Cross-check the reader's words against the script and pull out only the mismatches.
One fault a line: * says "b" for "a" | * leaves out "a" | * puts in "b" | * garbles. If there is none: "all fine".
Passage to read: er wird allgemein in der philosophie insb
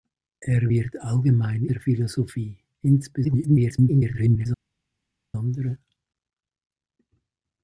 * leaves out "in"
* garbles